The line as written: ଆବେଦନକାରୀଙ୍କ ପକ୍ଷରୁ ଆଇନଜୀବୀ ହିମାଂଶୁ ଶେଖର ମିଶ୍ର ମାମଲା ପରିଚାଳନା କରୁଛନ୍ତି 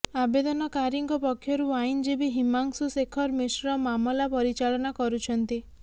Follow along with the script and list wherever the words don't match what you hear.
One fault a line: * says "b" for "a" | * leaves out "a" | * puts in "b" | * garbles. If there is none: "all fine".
all fine